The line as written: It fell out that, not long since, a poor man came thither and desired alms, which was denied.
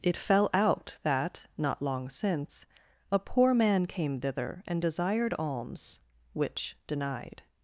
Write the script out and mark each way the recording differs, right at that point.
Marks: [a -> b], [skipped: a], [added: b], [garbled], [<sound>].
It fell out that, not long since, a poor man came thither and desired alms, which [skipped: was] denied.